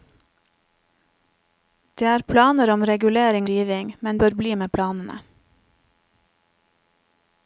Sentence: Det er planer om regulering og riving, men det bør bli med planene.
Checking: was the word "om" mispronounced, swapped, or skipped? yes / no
no